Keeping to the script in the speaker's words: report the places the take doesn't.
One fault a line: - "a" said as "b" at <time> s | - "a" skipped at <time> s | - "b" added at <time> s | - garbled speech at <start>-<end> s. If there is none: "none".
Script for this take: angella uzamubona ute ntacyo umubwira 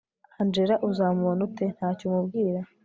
none